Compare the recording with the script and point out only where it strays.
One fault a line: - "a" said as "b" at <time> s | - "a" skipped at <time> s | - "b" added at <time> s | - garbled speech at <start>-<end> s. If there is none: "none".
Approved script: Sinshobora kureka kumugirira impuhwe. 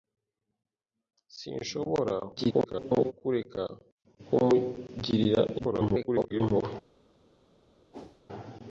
- garbled speech at 2.4-3.1 s
- garbled speech at 5.6-6.4 s